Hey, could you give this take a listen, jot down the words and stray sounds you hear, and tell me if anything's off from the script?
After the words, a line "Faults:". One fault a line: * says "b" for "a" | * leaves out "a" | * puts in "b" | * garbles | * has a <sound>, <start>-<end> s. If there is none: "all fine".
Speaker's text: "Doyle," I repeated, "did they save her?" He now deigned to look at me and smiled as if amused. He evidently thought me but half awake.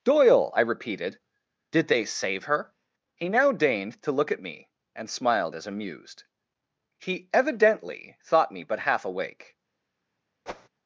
"Doyle," I repeated, "did they save her?" He now deigned to look at me and smiled as amused. He evidently thought me but half awake.
Faults:
* leaves out "if"
* has a whoosh, 10.5-10.7 s